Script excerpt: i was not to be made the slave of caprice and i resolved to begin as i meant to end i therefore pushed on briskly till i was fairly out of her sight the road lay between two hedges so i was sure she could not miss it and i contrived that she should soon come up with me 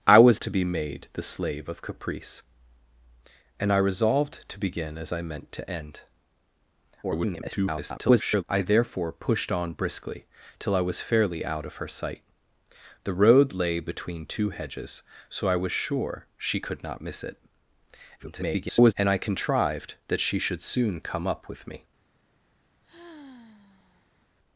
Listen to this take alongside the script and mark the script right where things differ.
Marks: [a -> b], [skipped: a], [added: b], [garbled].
i was [skipped: not] to be made the slave of caprice and i resolved to begin as i meant to end [garbled] i therefore pushed on briskly till i was fairly out of her sight the road lay between two hedges so i was sure she could not miss it [garbled] and i contrived that she should soon come up with me